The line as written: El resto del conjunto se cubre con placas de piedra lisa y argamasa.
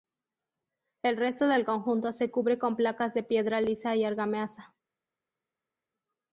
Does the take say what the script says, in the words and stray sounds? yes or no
yes